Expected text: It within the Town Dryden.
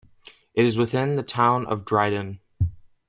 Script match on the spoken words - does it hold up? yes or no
no